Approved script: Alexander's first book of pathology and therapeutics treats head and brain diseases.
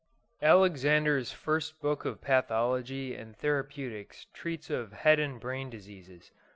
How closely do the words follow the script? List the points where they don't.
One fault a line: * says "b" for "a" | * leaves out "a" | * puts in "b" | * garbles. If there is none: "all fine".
* puts in "of"